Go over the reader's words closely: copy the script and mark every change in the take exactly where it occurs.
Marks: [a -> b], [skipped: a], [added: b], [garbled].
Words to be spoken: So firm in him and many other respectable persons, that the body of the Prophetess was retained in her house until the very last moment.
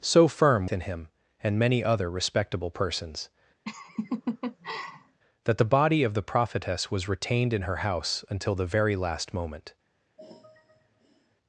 So firm in him and many other respectable persons, that the body of the Prophetess was retained in her house until the very last moment.